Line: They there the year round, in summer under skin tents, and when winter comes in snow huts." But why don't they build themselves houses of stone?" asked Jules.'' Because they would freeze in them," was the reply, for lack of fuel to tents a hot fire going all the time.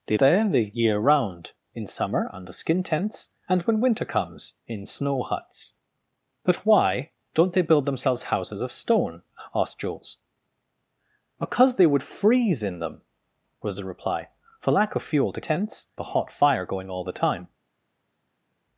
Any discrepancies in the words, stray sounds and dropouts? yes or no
no